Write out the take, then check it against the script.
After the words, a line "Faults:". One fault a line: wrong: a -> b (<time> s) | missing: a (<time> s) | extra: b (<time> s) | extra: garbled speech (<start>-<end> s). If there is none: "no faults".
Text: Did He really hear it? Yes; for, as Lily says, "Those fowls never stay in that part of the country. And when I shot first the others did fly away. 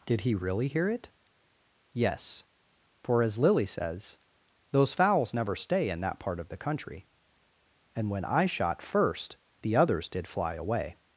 Did He really hear it? Yes; for, as Lily says, "Those fowls never stay in that part of the country. And when I shot first the others did fly away.
Faults:
no faults